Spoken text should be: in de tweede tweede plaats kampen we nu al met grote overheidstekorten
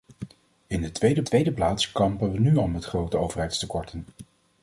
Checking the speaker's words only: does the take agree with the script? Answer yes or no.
yes